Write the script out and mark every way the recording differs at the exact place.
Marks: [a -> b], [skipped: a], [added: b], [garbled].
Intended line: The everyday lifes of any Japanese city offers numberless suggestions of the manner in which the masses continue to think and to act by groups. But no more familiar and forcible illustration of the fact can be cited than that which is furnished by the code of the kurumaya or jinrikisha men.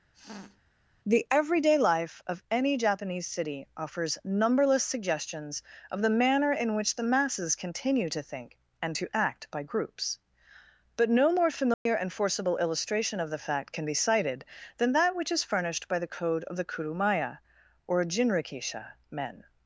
The everyday [lifes -> life] of any Japanese city offers numberless suggestions of the manner in which the masses continue to think and to act by groups. But no more familiar and forcible illustration of the fact can be cited than that which is furnished by the code of the kurumaya or jinrikisha men.